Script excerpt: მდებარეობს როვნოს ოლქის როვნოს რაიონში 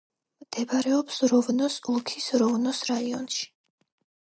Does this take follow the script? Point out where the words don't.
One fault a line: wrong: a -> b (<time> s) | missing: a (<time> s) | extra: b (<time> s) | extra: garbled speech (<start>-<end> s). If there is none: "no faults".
no faults